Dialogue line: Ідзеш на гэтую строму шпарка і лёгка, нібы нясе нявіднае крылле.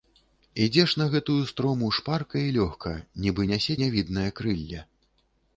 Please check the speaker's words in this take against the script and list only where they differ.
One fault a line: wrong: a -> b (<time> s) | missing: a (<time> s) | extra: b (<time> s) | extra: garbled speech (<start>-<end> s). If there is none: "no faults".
no faults